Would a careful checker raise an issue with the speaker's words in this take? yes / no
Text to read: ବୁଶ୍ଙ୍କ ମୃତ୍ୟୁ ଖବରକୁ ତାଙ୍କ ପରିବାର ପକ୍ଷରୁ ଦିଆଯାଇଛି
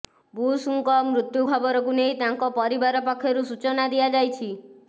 yes